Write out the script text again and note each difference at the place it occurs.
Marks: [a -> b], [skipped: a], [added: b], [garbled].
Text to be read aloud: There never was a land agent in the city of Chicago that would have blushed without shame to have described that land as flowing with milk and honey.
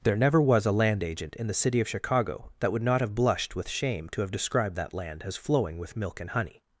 There never was a land agent in the city of Chicago that would [added: not] have blushed [without -> with] shame to have described that land as flowing with milk and honey.